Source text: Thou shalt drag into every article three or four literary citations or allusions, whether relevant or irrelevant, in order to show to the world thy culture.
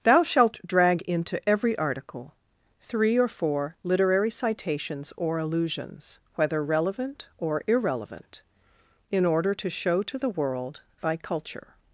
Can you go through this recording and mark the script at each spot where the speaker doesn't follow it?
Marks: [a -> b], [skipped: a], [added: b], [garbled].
Thou shalt drag into every article three or four literary citations or allusions, whether relevant or irrelevant, in order to show to the world thy culture.